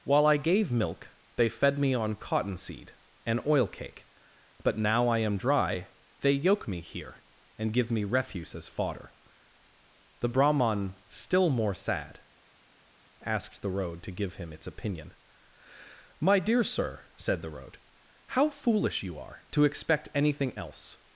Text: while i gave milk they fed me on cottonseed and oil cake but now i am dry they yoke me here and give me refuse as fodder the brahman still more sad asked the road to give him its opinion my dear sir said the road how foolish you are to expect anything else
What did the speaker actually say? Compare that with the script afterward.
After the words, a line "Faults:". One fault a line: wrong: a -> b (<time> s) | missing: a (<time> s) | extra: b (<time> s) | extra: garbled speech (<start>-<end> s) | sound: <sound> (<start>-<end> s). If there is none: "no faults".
while i gave milk they fed me on cottonseed and oil cake but now i am dry they yoke me here and give me refuse as fodder the brahman still more sad asked the road to give him its opinion my dear sir said the road how foolish you are to expect anything else
Faults:
no faults